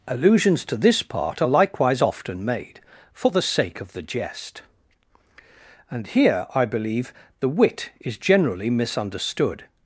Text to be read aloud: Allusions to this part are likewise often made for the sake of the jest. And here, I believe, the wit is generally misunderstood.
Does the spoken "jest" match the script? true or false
true